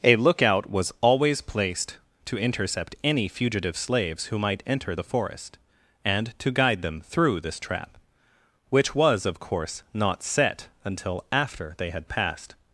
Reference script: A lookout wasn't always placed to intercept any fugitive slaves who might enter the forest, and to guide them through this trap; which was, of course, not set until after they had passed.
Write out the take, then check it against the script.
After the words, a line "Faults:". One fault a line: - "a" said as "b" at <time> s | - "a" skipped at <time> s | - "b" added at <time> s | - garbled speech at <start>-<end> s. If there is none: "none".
A lookout was always placed to intercept any fugitive slaves who might enter the forest, and to guide them through this trap; which was, of course, not set until after they had passed.
Faults:
- "wasn't" said as "was" at 0.7 s